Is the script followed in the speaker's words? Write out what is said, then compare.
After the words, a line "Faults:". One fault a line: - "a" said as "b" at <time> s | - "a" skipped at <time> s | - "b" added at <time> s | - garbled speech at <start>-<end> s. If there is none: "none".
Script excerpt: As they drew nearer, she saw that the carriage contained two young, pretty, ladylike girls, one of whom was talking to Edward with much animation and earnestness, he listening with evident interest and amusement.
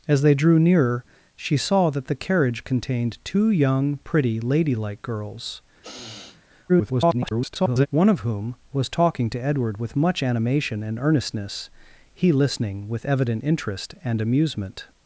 As they drew nearer, she saw that the carriage contained two young, pretty, ladylike girls, [garbled] one of whom was talking to Edward with much animation and earnestness, he listening with evident interest and amusement.
Faults:
- garbled speech at 6.7-7.9 s